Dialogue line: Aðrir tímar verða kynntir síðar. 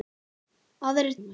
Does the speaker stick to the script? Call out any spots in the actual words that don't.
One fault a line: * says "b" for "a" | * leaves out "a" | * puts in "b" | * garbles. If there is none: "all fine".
* leaves out "tímar verða kynntir"